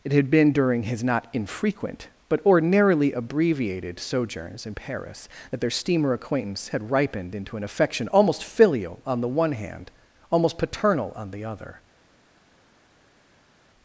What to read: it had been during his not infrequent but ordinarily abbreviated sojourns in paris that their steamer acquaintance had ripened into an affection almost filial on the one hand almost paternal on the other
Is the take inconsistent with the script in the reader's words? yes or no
no